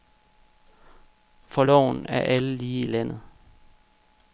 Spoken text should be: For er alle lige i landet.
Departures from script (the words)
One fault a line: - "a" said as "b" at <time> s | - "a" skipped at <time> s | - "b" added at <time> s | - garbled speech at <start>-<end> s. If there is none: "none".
- "loven" added at 1.6 s